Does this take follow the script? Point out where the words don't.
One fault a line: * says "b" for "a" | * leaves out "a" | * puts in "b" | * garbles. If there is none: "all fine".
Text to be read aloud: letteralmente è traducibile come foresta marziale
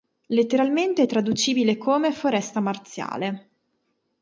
all fine